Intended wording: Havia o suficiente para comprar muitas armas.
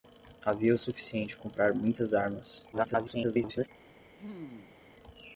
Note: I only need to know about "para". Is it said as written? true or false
false